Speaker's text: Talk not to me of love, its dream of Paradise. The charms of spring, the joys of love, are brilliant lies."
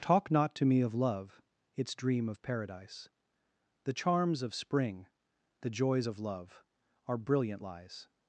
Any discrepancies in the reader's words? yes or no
no